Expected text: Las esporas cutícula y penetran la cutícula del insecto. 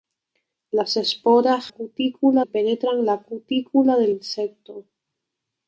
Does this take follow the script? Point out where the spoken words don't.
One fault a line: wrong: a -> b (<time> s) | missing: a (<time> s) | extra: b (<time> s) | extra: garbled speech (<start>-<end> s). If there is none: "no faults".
no faults